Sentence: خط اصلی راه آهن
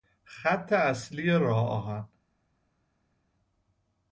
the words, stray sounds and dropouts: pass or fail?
pass